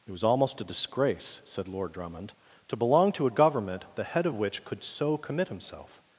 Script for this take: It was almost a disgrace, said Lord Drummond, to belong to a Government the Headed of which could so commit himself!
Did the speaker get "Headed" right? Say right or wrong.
wrong